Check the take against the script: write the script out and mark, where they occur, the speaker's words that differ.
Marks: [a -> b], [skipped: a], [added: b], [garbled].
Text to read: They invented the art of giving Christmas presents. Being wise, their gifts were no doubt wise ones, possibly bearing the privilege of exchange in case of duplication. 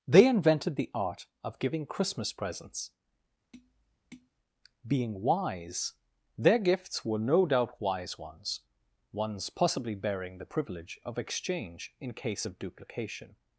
They invented the art of giving Christmas presents. Being wise, their gifts were no doubt wise ones, [added: ones] possibly bearing the privilege of exchange in case of duplication.